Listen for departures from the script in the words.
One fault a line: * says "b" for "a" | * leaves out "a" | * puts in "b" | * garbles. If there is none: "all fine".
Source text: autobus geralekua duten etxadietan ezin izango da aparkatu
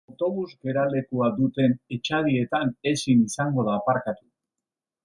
all fine